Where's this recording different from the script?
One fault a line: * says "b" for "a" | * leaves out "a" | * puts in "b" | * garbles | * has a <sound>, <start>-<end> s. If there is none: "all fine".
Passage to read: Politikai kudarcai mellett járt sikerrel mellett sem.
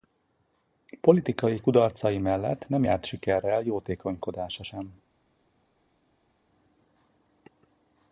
* puts in "nem"
* says "jótékonykodása" for "mellett"